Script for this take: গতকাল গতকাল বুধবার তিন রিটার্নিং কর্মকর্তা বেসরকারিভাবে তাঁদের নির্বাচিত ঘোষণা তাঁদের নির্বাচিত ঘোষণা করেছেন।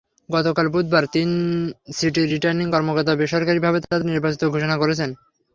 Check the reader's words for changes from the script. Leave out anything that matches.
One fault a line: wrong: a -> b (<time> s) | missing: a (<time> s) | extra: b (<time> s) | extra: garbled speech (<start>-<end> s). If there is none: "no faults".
missing: গতকাল (0.7 s)
extra: সিটির (2.0 s)
missing: তাঁদের নির্বাচিত ঘোষণা (4.8 s)